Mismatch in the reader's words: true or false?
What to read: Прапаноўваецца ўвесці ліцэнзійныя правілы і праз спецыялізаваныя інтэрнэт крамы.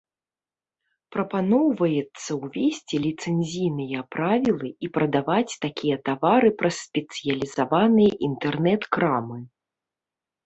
true